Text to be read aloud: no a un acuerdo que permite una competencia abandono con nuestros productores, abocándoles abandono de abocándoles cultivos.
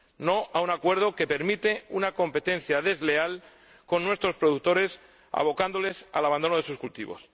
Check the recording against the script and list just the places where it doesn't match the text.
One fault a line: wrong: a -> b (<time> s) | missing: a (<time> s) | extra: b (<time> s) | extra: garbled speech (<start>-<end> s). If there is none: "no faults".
wrong: abandono -> desleal (2.8 s)
extra: al (6.1 s)
wrong: abocándoles -> sus (6.6 s)